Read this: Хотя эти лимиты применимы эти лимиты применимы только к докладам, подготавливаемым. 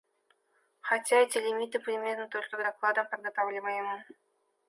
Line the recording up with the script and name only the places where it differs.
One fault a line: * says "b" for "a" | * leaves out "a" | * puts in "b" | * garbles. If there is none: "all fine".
* leaves out "эти лимиты применимы"